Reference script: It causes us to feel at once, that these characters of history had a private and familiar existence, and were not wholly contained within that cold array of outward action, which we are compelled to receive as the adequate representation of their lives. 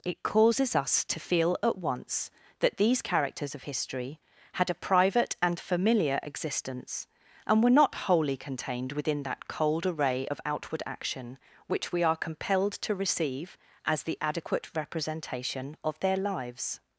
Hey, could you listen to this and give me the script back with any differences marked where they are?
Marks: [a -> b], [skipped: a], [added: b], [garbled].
It causes us to feel at once, that these characters of history had a private and familiar existence, and were not wholly contained within that cold array of outward action, which we are compelled to receive as the adequate representation of their lives.